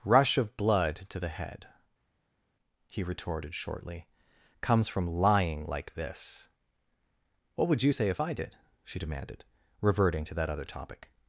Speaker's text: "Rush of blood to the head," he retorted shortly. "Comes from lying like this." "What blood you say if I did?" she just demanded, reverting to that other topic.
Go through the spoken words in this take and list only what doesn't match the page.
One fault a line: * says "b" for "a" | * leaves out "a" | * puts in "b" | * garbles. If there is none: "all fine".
* says "would" for "blood"
* leaves out "just"